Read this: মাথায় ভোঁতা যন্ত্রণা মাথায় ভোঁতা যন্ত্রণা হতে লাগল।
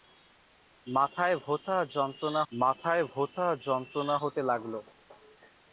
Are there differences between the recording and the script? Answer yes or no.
no